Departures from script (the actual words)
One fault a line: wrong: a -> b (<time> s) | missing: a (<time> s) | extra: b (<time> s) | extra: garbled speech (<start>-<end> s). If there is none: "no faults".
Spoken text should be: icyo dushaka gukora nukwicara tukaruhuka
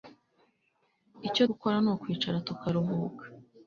missing: dushaka (1.4 s)